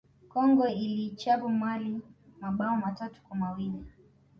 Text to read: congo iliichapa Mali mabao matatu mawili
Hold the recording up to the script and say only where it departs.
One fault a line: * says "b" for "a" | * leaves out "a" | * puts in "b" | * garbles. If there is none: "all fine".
* puts in "kwa"